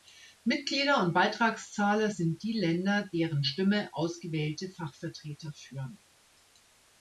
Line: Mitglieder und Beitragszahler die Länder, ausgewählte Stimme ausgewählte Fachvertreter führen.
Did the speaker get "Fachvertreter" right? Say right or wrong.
right